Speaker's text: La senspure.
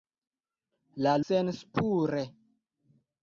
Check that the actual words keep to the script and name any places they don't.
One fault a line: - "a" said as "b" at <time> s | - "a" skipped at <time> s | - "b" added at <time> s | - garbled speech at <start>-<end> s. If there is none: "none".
none